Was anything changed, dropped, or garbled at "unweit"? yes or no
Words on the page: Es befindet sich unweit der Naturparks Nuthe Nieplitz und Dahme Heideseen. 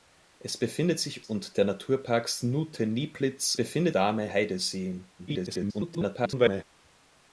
yes